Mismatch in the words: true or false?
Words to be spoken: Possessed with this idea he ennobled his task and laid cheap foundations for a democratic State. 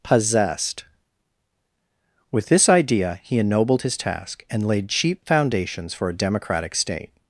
false